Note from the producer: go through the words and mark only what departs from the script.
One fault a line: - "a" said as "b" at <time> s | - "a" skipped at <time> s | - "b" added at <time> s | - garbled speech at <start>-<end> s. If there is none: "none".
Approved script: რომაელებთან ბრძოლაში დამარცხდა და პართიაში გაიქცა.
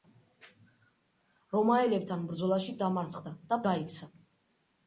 - "პართიაში" skipped at 3.6 s